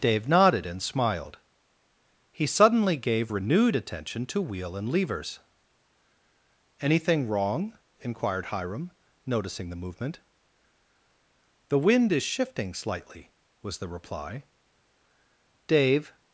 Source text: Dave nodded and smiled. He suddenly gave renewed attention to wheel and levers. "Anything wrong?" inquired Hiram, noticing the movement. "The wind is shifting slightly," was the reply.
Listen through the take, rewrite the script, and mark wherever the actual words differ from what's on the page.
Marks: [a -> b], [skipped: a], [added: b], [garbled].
Dave nodded and smiled. He suddenly gave renewed attention to wheel and levers. "Anything wrong?" inquired Hiram, noticing the movement. "The wind is shifting slightly," was the reply. [added: Dave]